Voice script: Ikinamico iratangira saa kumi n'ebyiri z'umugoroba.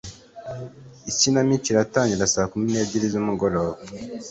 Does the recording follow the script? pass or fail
pass